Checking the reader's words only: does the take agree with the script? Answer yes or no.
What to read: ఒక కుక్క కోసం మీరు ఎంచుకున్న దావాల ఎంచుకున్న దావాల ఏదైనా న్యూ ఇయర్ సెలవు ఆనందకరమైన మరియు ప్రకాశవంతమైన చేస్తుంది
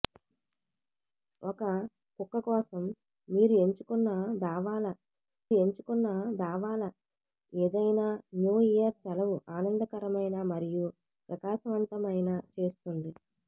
yes